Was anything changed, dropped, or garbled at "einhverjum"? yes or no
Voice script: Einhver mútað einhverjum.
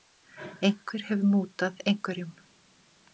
no